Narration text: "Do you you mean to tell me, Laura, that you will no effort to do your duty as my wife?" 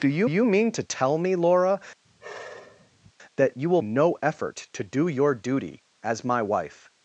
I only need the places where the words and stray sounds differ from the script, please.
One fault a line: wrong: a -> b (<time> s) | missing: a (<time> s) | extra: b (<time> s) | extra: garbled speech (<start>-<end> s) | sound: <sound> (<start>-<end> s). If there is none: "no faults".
sound: sigh (2.0-3.1 s)